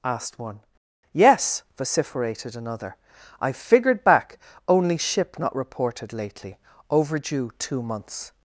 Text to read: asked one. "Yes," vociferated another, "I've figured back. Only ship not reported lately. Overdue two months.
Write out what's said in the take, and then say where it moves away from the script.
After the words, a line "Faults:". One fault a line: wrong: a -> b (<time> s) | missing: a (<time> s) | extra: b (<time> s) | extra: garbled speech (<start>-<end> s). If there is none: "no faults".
asked one. "Yes," vociferated another, "I've figured back. Only ship not reported lately. Overdue two months.
Faults:
no faults